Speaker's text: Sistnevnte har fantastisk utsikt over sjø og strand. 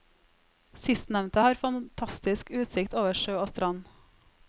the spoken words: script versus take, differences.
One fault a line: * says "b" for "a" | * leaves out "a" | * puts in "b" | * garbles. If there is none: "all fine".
all fine